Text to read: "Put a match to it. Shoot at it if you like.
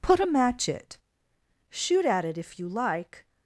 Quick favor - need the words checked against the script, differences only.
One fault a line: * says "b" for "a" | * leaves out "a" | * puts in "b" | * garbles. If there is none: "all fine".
* leaves out "to"